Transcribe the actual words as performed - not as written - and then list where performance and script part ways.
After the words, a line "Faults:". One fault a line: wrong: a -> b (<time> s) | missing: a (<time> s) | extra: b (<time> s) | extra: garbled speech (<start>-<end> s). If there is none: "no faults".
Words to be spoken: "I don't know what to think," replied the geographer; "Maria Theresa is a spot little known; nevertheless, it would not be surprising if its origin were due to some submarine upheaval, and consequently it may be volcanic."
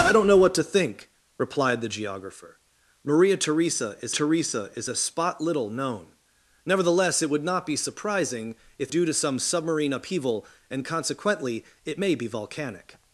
"I don't know what to think," replied the geographer; "Maria Theresa is Theresa is a spot little known; nevertheless, it would not be surprising if due to some submarine upheaval, and consequently it may be volcanic."
Faults:
extra: Theresa is (4.1 s)
missing: its origin were (8.9 s)